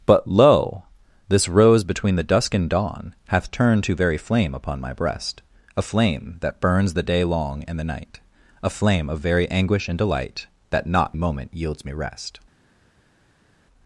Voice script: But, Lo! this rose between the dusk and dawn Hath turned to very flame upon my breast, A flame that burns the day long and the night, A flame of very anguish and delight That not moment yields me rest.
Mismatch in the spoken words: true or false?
false